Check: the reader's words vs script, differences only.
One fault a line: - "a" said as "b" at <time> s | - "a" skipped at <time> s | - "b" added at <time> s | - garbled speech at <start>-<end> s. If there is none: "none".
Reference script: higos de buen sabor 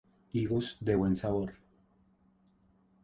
none